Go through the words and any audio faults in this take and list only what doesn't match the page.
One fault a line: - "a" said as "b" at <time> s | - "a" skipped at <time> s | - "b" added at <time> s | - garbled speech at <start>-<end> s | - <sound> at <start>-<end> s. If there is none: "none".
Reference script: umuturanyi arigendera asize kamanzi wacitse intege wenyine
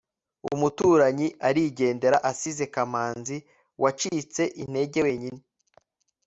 none